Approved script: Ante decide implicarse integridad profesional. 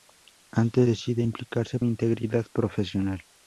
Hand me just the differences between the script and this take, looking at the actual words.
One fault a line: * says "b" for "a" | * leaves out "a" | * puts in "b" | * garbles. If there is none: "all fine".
all fine